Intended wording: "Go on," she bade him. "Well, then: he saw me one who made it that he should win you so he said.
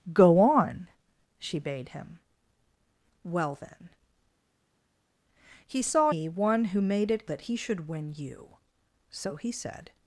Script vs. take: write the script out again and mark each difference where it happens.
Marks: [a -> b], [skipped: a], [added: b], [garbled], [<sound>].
"Go on," she bade him. "Well, then: he saw me one who made it that he should win you so he said.